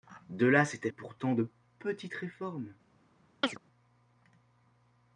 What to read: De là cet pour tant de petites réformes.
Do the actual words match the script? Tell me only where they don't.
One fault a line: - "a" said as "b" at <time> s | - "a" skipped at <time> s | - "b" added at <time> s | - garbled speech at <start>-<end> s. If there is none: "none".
none